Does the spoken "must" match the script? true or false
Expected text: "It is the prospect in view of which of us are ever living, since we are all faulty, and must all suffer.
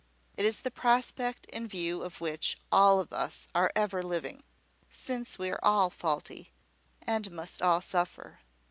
true